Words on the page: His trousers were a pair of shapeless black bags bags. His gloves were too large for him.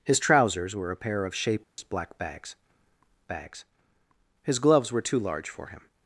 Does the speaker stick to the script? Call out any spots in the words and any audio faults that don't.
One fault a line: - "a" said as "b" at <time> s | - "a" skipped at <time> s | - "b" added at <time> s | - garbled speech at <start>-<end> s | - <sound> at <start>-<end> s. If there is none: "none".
- dropout at 1.6-1.8 s